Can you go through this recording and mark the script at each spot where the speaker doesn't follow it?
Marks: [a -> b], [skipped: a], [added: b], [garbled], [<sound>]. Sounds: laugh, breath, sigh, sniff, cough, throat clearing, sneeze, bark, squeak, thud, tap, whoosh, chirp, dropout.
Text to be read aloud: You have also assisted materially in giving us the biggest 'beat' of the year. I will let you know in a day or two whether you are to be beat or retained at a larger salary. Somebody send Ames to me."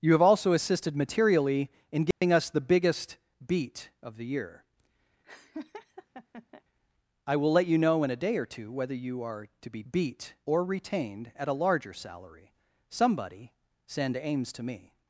You have also assisted materially in giving [dropout] us the biggest 'beat' of the year. [laugh] I will let you know in a day or two whether you are to be beat or retained at a larger salary. Somebody send Ames to me."